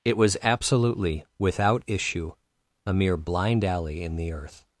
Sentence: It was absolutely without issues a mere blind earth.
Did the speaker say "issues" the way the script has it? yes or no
no